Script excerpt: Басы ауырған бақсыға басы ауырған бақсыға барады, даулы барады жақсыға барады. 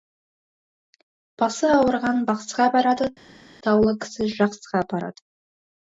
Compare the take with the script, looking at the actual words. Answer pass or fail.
fail